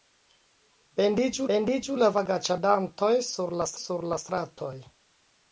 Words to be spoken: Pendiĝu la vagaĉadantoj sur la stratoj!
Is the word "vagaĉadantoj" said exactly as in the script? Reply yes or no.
yes